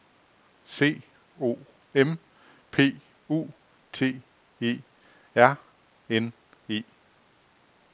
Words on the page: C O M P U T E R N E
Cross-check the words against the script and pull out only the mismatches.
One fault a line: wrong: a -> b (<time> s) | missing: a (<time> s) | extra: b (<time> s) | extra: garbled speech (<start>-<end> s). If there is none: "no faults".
no faults